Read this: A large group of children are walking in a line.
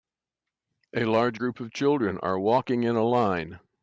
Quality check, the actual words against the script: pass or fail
pass